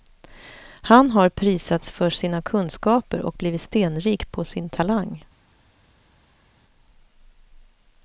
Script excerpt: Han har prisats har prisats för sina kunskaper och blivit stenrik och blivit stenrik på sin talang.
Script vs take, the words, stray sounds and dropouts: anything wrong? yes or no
yes